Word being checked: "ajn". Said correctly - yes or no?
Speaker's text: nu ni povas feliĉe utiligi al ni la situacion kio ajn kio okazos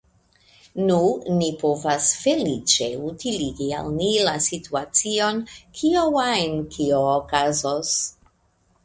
yes